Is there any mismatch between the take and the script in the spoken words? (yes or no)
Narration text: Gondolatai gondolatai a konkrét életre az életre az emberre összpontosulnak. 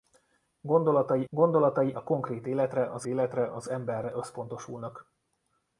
no